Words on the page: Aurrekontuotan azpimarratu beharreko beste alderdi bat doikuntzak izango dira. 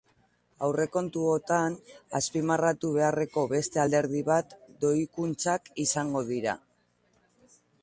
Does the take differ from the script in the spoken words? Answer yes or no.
no